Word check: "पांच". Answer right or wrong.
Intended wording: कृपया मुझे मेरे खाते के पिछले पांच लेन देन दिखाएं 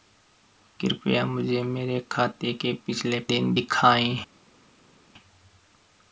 wrong